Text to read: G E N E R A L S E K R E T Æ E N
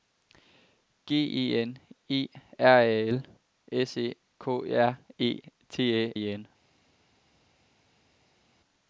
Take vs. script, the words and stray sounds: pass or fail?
pass